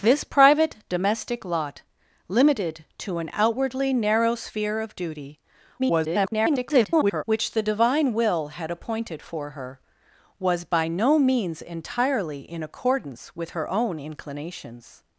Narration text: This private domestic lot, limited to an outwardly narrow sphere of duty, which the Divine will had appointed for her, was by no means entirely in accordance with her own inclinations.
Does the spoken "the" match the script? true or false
true